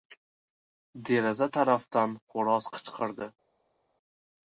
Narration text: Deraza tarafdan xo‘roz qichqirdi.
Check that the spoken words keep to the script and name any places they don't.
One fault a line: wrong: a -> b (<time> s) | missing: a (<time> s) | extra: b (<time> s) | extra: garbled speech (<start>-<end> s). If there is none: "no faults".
no faults